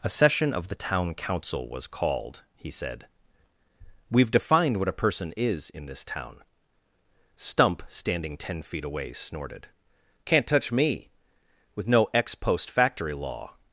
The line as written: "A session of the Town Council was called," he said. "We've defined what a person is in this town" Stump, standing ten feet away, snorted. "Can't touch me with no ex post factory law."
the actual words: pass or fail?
pass